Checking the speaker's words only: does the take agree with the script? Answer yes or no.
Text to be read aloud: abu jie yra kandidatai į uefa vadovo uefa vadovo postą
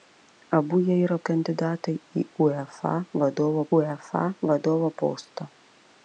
yes